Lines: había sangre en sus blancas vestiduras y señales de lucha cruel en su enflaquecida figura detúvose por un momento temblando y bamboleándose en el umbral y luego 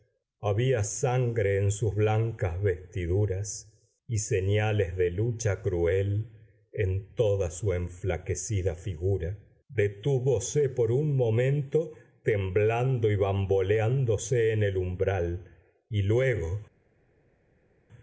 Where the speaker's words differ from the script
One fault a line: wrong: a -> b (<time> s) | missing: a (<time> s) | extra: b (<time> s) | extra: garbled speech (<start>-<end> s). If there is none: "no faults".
extra: toda (7.1 s)